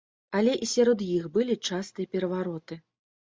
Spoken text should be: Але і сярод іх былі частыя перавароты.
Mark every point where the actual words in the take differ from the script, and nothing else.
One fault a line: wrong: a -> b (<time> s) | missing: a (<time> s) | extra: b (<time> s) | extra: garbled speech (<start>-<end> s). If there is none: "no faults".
no faults